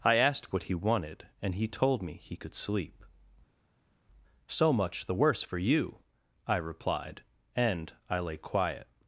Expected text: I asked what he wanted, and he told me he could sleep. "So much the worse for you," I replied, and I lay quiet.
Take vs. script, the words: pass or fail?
pass